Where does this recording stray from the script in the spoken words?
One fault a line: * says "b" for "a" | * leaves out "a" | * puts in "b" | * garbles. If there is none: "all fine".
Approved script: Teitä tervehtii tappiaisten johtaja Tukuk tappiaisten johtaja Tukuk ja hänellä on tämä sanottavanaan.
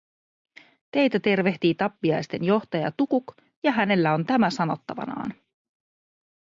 * leaves out "tappiaisten johtaja Tukuk"